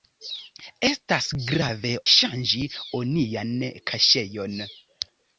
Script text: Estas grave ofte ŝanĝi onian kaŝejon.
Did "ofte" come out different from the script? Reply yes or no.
yes